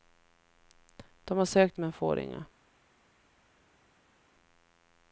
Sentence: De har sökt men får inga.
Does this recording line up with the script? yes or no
yes